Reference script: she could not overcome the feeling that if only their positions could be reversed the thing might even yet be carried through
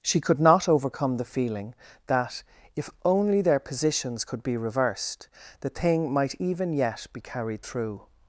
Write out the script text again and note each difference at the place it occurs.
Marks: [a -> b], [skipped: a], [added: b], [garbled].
she could not overcome the feeling that if only their positions could be reversed the thing might even yet be carried through